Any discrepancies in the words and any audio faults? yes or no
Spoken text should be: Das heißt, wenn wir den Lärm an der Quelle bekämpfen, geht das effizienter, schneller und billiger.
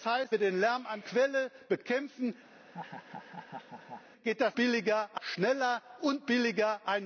yes